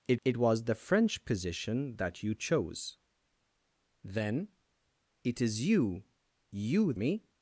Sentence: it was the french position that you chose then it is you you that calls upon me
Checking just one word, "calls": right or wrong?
wrong